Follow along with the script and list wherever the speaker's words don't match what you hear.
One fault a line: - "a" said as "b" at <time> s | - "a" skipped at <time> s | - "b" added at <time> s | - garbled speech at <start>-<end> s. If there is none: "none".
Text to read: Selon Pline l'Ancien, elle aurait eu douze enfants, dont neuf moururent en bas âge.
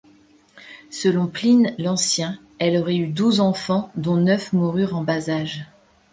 none